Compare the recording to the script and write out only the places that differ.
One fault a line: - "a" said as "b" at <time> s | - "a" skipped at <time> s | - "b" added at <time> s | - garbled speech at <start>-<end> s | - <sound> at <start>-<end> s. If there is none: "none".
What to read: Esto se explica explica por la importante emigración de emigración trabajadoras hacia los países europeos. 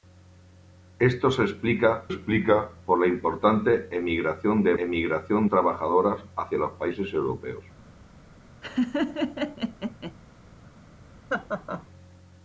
- laugh at 8.6-10.1 s
- laugh at 11.3-11.9 s